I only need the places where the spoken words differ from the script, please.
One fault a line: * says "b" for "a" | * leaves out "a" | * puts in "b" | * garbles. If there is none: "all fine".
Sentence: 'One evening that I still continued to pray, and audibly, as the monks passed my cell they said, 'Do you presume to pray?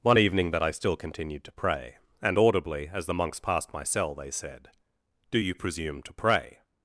all fine